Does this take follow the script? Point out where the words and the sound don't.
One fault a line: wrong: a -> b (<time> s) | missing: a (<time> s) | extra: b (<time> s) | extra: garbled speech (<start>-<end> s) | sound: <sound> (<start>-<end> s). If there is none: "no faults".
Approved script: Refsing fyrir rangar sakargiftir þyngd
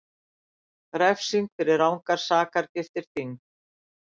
no faults